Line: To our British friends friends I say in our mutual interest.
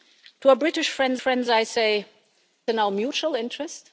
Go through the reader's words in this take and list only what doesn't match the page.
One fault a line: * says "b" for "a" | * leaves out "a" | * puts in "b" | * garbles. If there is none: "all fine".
all fine